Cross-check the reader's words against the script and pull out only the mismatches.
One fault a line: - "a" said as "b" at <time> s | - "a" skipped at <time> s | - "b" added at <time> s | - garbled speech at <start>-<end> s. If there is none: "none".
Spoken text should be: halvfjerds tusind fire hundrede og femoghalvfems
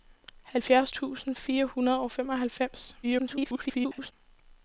- garbled speech at 3.0-4.1 s